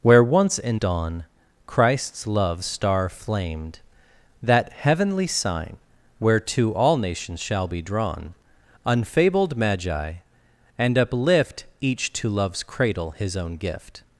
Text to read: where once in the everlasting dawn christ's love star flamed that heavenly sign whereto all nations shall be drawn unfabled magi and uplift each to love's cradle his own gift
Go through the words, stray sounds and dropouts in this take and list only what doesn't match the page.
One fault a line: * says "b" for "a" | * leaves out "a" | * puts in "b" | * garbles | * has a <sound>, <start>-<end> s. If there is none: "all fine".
* leaves out "the everlasting"